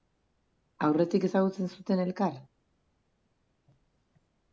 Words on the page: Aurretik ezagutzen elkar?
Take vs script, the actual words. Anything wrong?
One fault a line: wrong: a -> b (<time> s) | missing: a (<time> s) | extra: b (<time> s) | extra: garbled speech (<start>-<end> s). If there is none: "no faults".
extra: zuten (1.8 s)